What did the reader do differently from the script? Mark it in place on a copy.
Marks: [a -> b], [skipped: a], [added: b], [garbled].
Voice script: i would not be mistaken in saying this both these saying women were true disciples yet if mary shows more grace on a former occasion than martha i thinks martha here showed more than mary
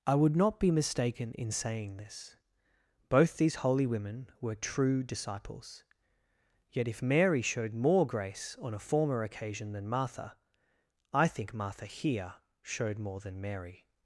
i would not be mistaken in saying this both these [saying -> holy] women were true disciples yet if mary [shows -> showed] more grace on a former occasion than martha i [thinks -> think] martha here showed more than mary